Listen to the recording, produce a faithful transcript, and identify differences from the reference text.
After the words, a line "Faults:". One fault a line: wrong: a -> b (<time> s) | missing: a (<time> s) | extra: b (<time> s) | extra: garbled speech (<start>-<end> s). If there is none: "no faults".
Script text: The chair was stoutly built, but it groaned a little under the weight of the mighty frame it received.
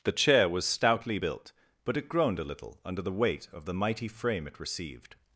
The chair was stoutly built, but it groaned a little under the weight of the mighty frame it received.
Faults:
no faults